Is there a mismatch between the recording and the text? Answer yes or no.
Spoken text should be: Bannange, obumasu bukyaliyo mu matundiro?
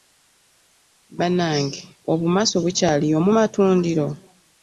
no